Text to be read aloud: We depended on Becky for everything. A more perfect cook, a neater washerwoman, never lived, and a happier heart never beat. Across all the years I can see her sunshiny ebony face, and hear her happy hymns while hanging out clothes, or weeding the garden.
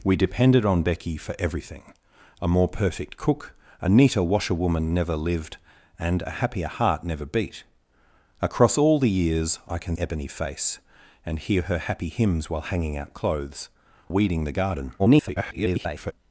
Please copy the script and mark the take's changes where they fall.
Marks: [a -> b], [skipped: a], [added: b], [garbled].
We depended on Becky for everything. A more perfect cook, a neater washerwoman, never lived, and a happier heart never beat. Across all the years I can [skipped: see her sunshiny] ebony face, and hear her happy hymns while hanging out clothes, [skipped: or] weeding the garden. [garbled]